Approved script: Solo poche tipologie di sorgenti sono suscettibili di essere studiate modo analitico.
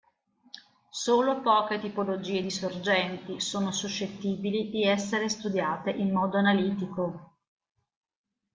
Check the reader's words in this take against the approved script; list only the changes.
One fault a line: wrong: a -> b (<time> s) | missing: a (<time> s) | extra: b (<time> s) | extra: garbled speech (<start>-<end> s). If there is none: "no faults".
extra: in (5.9 s)